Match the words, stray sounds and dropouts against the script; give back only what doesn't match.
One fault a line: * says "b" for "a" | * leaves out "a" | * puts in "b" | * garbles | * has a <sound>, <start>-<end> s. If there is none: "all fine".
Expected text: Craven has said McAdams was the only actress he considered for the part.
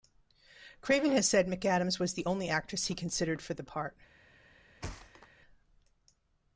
* has a thud, 4.8-5.3 s